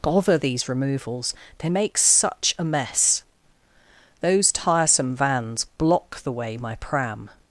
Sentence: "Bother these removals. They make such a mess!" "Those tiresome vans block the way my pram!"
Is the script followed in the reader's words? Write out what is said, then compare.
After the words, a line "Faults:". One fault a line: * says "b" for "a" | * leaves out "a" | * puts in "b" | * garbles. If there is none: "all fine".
"Bother these removals. They make such a mess!" "Those tiresome vans block the way my pram!"
Faults:
all fine